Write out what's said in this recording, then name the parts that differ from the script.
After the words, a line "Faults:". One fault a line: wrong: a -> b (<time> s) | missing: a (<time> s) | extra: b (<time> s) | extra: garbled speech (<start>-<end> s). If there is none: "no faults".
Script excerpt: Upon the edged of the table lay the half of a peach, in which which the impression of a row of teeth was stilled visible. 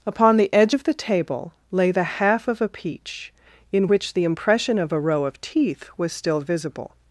Upon the edge of the table lay the half of a peach, in which the impression of a row of teeth was still visible.
Faults:
wrong: edged -> edge (0.5 s)
missing: which (4.1 s)
wrong: stilled -> still (6.1 s)